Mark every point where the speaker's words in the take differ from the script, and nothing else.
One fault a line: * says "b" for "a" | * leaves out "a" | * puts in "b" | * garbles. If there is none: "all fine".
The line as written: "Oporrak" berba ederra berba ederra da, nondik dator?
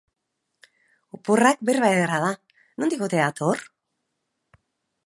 * leaves out "berba ederra"
* puts in "ote"